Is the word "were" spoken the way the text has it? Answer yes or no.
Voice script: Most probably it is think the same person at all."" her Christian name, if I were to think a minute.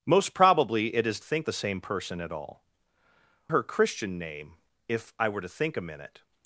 yes